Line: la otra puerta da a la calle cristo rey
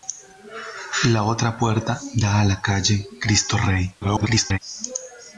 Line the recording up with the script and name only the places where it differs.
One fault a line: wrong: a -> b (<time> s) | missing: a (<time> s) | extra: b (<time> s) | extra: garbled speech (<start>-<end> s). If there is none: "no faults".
extra: garbled speech (4.0-4.6 s)